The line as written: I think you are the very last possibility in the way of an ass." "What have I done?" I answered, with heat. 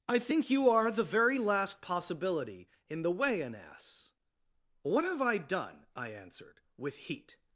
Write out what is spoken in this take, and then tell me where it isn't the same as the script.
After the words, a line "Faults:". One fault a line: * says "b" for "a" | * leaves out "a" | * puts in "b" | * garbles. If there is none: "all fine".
I think you are the very last possibility in the way an ass." "What have I done?" I answered, with heat.
Faults:
* leaves out "of"